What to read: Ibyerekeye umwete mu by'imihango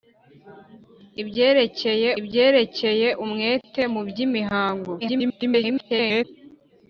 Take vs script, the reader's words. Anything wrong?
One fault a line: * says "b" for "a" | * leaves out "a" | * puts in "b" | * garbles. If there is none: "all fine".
* puts in "ibyerekeye"
* garbles